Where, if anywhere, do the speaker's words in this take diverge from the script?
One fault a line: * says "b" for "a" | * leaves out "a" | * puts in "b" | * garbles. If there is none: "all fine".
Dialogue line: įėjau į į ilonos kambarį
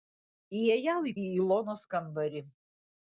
all fine